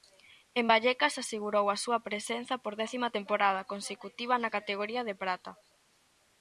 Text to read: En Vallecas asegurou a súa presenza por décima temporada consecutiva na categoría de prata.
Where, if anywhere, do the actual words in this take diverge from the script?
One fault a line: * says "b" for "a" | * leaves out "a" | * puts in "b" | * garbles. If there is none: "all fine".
all fine